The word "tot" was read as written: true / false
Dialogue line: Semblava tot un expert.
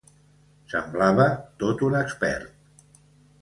true